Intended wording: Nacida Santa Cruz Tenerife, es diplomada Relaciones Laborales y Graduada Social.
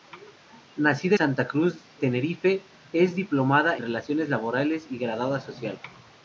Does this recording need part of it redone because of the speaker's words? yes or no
no